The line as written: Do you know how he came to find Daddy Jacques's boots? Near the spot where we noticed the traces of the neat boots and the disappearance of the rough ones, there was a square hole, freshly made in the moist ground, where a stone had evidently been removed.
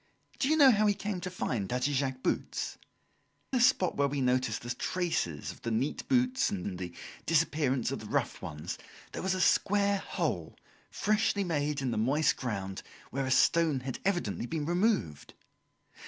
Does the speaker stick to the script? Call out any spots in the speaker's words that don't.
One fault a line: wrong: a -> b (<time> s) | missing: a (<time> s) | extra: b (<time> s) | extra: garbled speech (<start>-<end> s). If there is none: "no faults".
missing: Near (2.8 s)
extra: and (6.6 s)